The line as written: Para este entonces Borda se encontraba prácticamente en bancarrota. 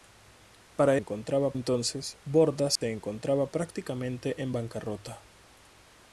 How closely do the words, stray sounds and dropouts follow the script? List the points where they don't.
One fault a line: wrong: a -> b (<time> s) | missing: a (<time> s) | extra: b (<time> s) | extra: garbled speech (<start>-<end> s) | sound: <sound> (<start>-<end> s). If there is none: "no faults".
wrong: este -> encontraba (1.0 s)
sound: dropout (2.8-2.8 s)